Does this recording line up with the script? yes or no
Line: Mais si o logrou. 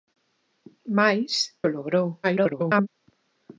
no